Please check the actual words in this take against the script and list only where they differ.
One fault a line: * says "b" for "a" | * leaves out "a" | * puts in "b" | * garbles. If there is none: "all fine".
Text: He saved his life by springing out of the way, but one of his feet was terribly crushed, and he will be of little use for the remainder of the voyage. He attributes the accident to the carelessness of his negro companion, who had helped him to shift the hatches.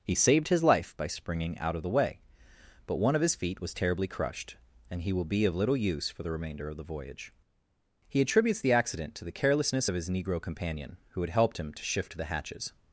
all fine